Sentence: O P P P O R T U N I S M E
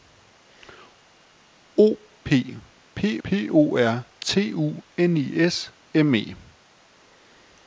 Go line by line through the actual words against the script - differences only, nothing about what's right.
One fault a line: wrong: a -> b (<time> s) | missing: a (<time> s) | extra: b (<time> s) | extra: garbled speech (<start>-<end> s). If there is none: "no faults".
no faults